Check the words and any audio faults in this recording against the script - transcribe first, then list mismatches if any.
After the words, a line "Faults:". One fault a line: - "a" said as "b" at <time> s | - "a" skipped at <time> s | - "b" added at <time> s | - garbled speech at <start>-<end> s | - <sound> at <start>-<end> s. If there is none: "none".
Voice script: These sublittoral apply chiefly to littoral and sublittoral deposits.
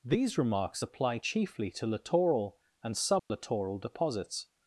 These remarks apply chiefly to littoral and sublittoral deposits.
Faults:
- "sublittoral" said as "remarks" at 0.3 s
- dropout at 3.2-3.3 s